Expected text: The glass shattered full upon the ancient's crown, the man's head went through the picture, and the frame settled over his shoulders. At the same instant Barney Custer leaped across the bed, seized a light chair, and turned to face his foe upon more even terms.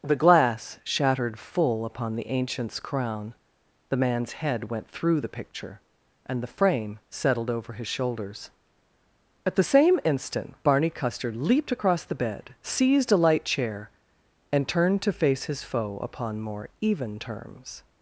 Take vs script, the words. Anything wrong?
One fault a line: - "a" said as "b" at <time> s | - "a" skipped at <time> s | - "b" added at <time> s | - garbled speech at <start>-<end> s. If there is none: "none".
none